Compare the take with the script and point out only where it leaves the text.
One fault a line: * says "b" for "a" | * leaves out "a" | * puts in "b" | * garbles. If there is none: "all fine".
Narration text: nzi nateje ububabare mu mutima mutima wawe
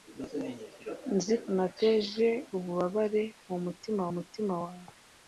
all fine